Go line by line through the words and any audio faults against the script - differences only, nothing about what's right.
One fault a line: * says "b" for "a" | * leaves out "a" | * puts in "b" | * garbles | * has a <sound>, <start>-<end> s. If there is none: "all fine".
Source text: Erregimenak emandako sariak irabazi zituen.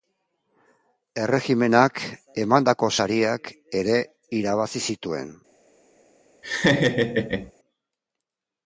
* puts in "ere"
* has a laugh, 6.4-7.5 s